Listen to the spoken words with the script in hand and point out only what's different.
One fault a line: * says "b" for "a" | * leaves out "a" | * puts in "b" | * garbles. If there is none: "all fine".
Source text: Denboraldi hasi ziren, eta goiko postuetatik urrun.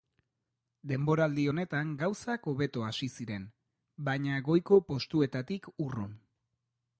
* puts in "honetan gauzak hobeto"
* says "baina" for "eta"